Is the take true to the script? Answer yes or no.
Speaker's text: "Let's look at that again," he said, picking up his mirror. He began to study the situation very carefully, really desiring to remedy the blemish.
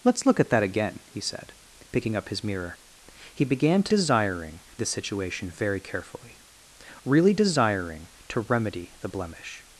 no